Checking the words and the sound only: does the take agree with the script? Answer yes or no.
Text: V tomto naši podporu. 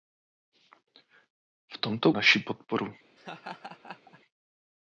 no